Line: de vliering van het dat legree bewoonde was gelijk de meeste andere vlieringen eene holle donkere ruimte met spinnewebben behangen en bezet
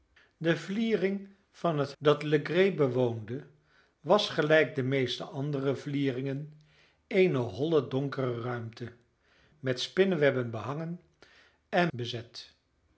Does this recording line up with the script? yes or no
yes